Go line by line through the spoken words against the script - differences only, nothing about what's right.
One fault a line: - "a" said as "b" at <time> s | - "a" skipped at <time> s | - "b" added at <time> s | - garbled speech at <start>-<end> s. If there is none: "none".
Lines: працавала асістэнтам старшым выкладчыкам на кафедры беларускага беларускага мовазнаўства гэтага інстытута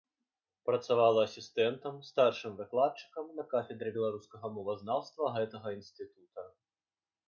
- "беларускага" skipped at 4.6 s